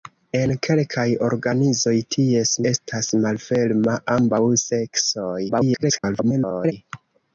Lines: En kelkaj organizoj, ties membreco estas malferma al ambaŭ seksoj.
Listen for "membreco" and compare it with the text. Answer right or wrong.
wrong